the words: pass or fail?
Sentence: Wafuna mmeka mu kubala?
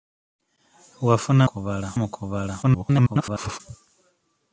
fail